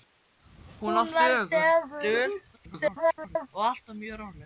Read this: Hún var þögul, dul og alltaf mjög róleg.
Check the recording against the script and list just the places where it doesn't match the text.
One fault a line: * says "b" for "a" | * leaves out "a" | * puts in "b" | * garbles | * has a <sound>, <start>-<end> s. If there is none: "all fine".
* garbles